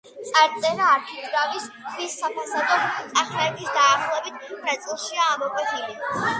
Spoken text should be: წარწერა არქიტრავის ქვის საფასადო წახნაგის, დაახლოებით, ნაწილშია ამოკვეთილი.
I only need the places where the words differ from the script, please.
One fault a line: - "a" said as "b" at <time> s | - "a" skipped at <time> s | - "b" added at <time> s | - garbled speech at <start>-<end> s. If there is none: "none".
none